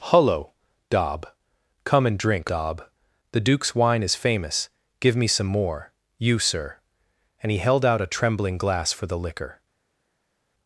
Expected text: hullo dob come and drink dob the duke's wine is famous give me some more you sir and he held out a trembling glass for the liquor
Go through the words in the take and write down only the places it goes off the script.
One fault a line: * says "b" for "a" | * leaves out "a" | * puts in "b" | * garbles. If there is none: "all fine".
all fine